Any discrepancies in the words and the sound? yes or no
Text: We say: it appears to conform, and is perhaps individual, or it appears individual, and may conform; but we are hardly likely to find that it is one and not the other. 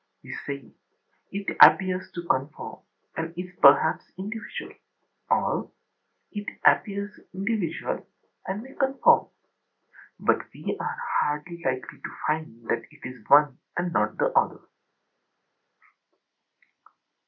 no